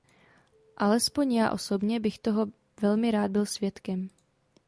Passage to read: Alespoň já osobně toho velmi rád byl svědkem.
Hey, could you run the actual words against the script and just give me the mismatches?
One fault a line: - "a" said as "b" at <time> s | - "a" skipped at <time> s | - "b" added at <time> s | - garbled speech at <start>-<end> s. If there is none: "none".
- "bych" added at 2.0 s